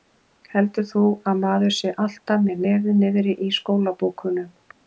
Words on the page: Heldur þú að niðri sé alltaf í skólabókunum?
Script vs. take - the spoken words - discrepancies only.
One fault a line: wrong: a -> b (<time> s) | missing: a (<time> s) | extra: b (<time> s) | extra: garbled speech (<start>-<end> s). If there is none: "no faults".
wrong: niðri -> maður (1.4 s)
extra: með nefið niðri (2.5 s)